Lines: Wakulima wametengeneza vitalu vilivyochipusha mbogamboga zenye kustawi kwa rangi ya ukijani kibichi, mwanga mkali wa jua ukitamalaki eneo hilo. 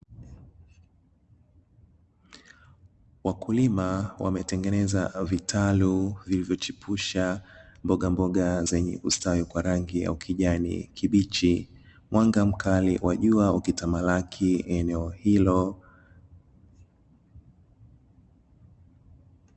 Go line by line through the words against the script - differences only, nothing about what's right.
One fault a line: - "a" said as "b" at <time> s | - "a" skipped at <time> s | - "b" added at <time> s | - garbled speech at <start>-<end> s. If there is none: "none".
none